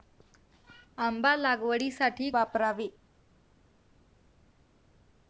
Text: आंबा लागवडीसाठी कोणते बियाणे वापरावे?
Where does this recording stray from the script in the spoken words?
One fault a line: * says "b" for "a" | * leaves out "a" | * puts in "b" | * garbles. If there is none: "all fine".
* leaves out "कोणते बियाणे"